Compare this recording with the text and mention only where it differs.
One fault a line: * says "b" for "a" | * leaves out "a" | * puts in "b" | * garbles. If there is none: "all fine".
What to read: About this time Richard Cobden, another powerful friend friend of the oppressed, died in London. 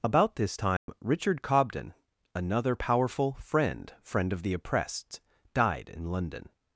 all fine